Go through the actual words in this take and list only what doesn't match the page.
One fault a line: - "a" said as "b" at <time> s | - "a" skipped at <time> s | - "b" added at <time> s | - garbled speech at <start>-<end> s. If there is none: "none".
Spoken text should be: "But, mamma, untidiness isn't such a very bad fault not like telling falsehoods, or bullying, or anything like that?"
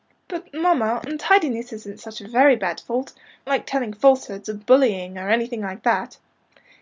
- "not" skipped at 3.1 s